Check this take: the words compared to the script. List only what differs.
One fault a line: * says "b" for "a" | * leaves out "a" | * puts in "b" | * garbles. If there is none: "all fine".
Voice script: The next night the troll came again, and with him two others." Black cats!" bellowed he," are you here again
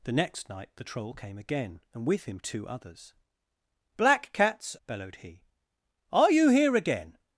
all fine